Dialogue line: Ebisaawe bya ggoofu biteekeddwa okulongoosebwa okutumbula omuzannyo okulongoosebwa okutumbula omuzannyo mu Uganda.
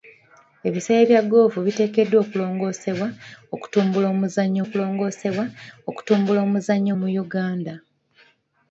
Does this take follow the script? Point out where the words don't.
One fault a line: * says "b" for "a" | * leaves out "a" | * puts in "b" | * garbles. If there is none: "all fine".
all fine